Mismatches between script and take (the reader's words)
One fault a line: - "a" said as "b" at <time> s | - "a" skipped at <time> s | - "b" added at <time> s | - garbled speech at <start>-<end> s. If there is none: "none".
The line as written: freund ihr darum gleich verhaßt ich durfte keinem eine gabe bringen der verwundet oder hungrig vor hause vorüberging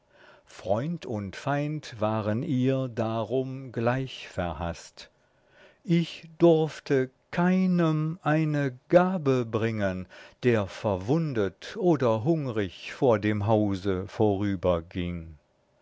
- "und feind waren" added at 1.0 s
- "dem" added at 13.2 s